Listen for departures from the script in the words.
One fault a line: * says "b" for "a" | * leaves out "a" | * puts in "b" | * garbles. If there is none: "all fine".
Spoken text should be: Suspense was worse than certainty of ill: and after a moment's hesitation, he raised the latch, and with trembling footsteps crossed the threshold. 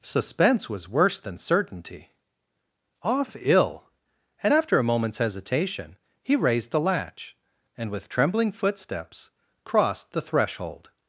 * says "off" for "of"